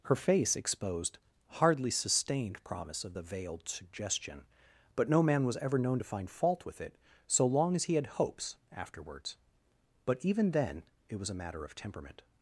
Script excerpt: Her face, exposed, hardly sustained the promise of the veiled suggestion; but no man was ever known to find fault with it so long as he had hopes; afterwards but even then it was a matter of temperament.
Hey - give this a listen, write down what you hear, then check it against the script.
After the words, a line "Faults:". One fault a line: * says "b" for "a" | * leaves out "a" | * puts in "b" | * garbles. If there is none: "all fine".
Her face, exposed, hardly sustained promise of the veiled suggestion; but no man was ever known to find fault with it so long as he had hopes; afterwards but even then it was a matter of temperament.
Faults:
* leaves out "the"